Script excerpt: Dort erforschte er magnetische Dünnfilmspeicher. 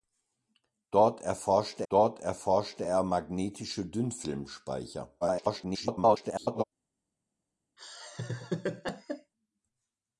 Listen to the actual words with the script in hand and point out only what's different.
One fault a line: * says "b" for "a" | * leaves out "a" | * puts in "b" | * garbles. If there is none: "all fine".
* puts in "dort erforschte"
* garbles